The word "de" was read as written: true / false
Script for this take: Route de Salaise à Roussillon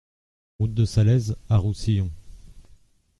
true